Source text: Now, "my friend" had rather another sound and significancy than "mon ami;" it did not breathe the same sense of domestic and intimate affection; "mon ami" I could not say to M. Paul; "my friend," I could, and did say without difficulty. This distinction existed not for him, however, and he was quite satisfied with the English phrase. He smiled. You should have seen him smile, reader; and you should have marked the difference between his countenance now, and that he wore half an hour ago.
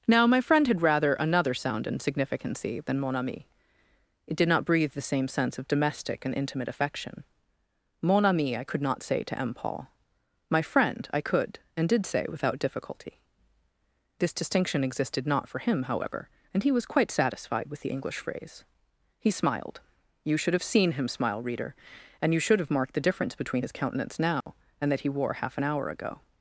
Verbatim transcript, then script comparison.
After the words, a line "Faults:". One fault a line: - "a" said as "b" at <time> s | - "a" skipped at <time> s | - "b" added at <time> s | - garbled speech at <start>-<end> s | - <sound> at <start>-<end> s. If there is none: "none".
Now, "my friend" had rather another sound and significancy than "mon ami;" it did not breathe the same sense of domestic and intimate affection; "mon ami" I could not say to M. Paul; "my friend," I could, and did say without difficulty. This distinction existed not for him, however, and he was quite satisfied with the English phrase. He smiled. You should have seen him smile, reader; and you should have marked the difference between his countenance now, and that he wore half an hour ago.
Faults:
- dropout at 24.4-24.5 s